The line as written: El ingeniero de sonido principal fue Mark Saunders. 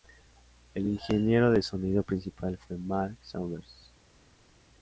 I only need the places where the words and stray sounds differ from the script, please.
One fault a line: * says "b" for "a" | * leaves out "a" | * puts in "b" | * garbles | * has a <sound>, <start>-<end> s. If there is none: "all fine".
all fine